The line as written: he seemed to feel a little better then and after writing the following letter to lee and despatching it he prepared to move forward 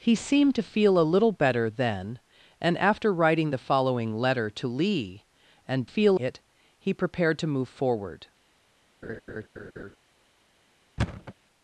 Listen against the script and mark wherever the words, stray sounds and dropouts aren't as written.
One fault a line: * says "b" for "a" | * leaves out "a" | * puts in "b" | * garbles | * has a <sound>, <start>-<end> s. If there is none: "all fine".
* says "feel" for "despatching"
* has a laugh, 9.0-10.0 s
* has a thud, 11.0-11.3 s